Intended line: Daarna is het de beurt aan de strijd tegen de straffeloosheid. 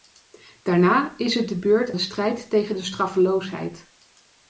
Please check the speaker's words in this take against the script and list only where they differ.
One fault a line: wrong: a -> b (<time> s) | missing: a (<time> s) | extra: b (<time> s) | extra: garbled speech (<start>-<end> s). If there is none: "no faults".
missing: aan (1.9 s)